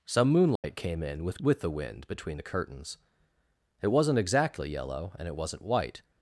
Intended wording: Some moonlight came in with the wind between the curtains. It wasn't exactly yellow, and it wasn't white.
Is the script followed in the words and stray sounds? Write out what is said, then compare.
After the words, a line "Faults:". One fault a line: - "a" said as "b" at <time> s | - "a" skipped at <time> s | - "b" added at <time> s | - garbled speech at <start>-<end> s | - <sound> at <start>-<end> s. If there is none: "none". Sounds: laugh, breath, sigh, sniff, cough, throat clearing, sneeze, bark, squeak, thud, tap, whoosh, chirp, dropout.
Some moonlight came in with with the wind between the curtains. It wasn't exactly yellow, and it wasn't white.
Faults:
- dropout at 0.6-0.6 s
- "with" added at 1.4 s